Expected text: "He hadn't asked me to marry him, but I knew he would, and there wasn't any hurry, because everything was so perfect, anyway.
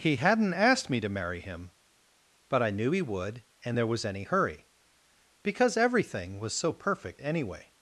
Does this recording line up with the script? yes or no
no